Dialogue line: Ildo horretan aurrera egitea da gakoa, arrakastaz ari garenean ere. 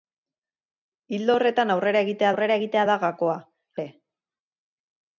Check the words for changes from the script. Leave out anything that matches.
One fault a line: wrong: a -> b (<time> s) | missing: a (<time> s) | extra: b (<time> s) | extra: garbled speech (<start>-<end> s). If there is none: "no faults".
extra: aurrera egitea (2.3 s)
missing: arrakastaz ari garenean (3.4 s)